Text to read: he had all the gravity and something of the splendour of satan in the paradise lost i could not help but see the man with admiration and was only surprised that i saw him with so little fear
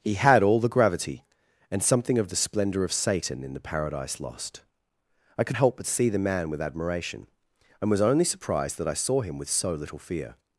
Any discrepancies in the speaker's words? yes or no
yes